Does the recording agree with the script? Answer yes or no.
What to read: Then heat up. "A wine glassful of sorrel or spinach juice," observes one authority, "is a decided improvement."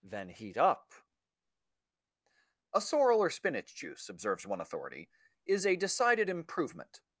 no